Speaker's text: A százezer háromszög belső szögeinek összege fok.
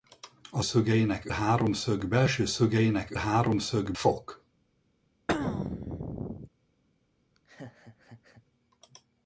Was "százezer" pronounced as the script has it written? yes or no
no